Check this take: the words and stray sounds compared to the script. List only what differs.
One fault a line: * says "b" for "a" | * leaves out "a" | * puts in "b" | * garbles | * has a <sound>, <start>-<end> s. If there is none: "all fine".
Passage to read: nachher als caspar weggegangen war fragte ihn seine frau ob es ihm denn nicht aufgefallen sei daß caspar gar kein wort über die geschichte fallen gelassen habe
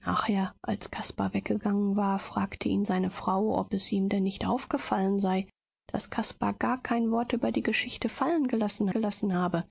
* puts in "gelassen"